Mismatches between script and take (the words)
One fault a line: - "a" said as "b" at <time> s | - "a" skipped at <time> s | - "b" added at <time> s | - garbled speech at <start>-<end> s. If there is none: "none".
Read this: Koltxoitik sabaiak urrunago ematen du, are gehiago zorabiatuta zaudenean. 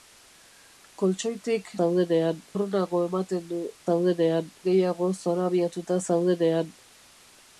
- "sabaiak" said as "zaudenean" at 1.8 s
- "are" said as "zaudenean" at 3.9 s